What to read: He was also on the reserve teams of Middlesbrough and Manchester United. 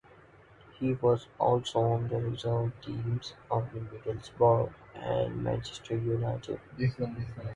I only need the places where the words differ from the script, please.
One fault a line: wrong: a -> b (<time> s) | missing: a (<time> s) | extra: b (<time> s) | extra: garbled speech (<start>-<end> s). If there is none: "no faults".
no faults